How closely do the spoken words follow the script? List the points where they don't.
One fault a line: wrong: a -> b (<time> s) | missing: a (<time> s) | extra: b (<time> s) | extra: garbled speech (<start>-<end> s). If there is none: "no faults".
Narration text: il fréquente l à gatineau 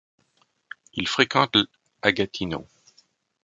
no faults